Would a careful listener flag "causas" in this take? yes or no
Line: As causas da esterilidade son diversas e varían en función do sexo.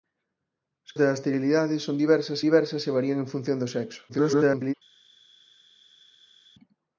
yes